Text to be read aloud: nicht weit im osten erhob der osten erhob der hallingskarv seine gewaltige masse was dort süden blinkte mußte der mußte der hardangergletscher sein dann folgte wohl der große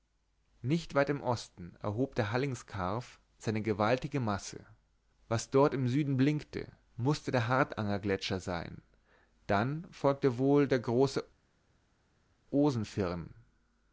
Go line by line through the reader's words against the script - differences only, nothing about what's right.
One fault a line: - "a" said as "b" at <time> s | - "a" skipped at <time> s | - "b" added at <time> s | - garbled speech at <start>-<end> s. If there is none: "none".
- "osten erhob der" skipped at 2.3 s
- "im" added at 5.8 s
- "mußte der" skipped at 7.5 s